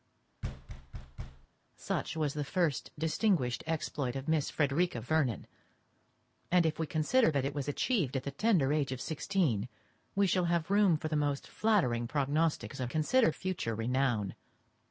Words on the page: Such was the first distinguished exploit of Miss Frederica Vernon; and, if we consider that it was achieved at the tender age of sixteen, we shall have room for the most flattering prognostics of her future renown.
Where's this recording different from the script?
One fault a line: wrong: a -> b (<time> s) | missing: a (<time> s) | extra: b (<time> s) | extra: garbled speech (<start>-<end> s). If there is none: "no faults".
wrong: her -> consider (12.9 s)